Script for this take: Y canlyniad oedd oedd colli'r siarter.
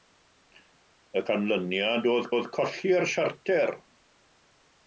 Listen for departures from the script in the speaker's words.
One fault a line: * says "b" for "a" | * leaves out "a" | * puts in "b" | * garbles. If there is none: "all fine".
all fine